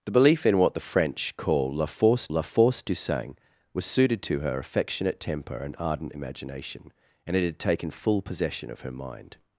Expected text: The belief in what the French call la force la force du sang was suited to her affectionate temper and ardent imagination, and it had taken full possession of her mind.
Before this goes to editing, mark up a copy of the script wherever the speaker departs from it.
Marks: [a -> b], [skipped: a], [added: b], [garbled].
The belief in what the French call la force la force du sang was suited to her affectionate temper and ardent imagination, and it had taken full possession of her mind.